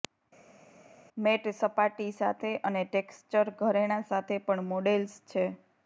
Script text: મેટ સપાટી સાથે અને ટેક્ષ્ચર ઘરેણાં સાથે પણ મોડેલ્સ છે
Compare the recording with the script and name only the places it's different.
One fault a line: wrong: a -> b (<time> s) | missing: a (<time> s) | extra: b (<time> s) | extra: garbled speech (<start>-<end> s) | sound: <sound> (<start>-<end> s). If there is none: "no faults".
no faults